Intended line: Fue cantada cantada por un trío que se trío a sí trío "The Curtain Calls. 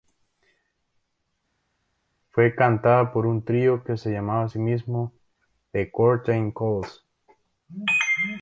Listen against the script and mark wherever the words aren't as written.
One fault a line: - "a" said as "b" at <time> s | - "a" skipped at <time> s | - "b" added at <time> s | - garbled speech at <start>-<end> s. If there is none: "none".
- "cantada" skipped at 3.1 s
- "trío" said as "llamaba" at 4.1 s
- "trío" said as "mismo" at 4.6 s